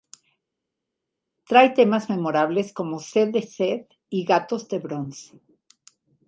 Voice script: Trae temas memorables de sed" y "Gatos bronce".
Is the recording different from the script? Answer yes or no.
yes